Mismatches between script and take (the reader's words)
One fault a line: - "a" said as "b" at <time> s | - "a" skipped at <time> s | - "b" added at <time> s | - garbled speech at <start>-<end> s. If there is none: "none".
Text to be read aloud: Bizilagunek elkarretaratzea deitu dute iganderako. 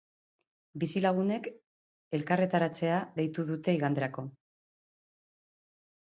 none